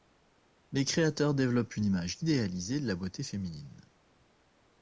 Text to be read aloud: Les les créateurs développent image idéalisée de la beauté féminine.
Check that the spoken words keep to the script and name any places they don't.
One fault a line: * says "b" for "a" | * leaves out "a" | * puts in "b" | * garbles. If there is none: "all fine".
* leaves out "les"
* puts in "une"